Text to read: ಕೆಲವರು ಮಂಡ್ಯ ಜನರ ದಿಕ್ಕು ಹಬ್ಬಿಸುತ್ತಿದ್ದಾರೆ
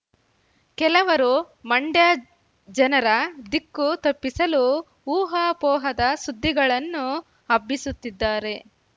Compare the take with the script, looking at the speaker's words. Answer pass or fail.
fail